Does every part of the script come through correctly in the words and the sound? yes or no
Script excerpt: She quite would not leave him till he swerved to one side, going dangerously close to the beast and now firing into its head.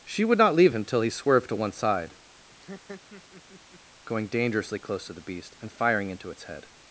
no